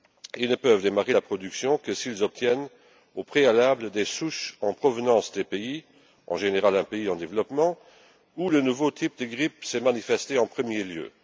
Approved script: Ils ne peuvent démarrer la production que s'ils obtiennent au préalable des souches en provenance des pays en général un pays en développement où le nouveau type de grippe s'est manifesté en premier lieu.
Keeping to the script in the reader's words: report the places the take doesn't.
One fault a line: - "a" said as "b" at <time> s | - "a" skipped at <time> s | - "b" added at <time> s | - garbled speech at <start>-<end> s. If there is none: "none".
none